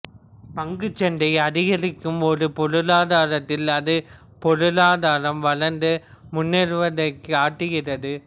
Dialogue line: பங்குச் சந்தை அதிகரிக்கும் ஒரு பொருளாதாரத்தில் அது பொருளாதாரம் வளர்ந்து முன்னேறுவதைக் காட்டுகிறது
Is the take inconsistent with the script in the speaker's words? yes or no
no